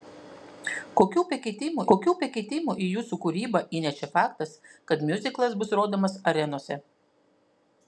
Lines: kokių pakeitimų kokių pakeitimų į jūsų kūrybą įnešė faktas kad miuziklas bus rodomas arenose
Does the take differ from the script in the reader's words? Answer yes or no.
no